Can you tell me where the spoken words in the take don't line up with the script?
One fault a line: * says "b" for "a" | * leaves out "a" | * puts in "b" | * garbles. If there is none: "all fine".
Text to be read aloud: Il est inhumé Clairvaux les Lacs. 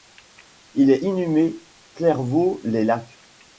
all fine